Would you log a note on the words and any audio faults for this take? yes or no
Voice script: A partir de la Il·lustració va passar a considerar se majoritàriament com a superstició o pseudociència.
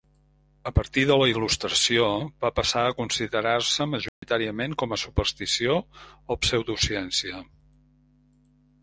yes